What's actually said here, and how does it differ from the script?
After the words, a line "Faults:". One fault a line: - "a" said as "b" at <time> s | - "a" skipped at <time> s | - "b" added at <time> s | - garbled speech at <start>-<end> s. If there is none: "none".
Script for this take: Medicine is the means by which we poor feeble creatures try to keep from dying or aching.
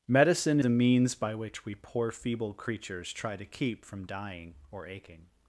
Medicine the means by which we poor feeble creatures try to keep from dying or aching.
Faults:
- "is" skipped at 0.6 s